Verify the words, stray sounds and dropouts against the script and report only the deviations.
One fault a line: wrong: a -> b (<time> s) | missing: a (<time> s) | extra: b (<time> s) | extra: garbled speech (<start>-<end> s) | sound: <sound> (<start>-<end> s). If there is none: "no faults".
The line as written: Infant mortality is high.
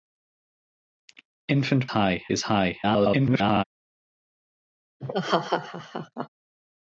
wrong: mortality -> high (1.9 s)
extra: garbled speech (2.8-3.6 s)
sound: laugh (5.0-6.3 s)